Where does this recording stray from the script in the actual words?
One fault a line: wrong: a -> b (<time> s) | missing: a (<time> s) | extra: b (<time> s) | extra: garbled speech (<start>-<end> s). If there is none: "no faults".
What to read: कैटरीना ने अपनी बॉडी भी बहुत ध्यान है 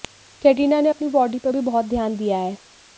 extra: पर (1.4 s)
extra: दिया (2.2 s)